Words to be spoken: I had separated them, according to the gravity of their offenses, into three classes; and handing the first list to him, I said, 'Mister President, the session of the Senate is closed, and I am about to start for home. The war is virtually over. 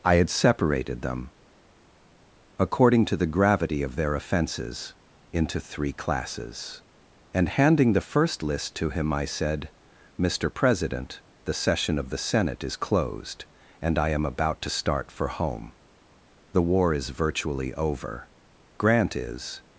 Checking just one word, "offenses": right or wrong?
right